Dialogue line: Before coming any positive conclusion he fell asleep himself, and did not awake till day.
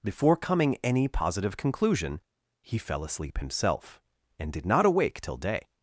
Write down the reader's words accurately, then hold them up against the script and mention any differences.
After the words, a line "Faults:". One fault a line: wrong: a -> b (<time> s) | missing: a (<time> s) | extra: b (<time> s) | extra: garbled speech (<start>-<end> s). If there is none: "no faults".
Before coming any positive conclusion he fell asleep himself, and did not awake till day.
Faults:
no faults